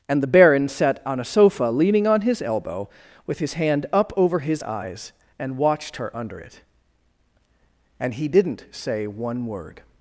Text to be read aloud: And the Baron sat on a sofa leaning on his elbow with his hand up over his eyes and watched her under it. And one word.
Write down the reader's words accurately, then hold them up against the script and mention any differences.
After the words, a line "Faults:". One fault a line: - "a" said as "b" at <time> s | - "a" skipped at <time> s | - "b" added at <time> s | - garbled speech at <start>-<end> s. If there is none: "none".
And the Baron sat on a sofa leaning on his elbow with his hand up over his eyes and watched her under it. And he didn't say one word.
Faults:
- "he didn't say" added at 8.1 s